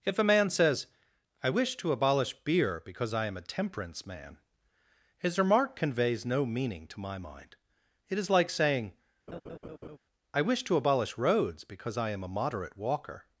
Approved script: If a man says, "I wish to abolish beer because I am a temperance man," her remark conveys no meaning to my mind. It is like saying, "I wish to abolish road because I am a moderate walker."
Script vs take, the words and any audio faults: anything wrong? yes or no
yes